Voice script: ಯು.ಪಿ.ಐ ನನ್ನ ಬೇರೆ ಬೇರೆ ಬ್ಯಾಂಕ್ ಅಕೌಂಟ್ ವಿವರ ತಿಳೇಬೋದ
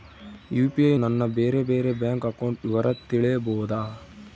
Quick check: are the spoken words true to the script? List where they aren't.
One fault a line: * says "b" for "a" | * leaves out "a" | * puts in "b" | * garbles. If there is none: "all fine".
all fine